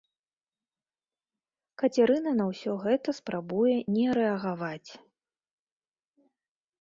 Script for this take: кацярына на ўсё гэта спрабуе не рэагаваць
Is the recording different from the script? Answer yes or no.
no